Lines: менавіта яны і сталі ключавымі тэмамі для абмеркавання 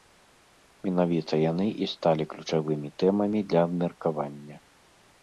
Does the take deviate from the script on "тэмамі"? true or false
false